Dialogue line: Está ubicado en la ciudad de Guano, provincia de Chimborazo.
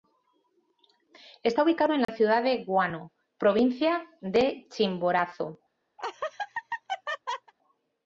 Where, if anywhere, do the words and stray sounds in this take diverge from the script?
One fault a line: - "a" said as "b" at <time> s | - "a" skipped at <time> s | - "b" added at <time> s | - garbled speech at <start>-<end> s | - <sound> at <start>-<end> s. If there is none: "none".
- dropout at 2.0-2.1 s
- laugh at 6.0-7.5 s